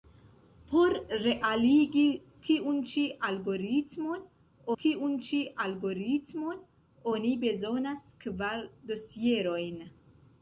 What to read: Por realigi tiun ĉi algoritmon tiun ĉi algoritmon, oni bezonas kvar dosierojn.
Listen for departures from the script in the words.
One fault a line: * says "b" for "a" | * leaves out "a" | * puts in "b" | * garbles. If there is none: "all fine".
all fine